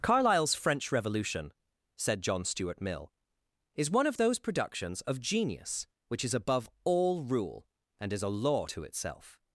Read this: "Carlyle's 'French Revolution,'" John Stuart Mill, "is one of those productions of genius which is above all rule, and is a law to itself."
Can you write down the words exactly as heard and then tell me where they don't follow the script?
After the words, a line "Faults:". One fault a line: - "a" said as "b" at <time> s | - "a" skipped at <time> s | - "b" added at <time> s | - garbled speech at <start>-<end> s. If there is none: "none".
"Carlyle's 'French Revolution,'" said John Stuart Mill, "is one of those productions of genius which is above all rule, and is a law to itself."
Faults:
- "said" added at 1.9 s